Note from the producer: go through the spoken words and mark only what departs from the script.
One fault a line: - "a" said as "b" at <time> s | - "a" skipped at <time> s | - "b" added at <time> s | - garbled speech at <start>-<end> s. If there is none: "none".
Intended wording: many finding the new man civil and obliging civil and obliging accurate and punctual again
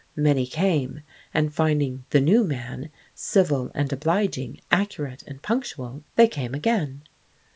- "came and" added at 0.5 s
- "civil" said as "accurate" at 4.7 s
- "obliging accurate and punctual" said as "punctual they came" at 5.4 s